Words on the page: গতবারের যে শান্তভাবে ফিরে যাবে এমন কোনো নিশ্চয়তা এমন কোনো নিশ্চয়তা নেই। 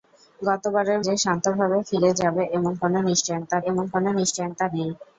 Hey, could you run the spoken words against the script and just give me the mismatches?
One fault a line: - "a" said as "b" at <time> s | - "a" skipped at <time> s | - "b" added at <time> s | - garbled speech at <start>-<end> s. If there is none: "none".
none